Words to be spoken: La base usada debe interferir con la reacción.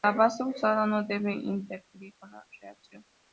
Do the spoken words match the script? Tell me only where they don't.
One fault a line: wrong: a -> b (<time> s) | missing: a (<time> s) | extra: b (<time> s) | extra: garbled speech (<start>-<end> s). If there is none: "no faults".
extra: no (0.9 s)